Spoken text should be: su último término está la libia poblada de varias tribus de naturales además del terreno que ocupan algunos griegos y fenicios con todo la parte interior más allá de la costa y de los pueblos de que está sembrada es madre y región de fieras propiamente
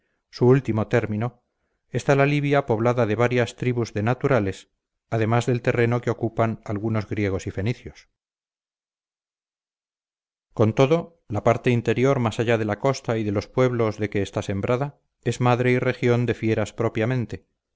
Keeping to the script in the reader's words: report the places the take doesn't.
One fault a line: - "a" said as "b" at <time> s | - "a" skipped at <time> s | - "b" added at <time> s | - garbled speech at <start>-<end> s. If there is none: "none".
none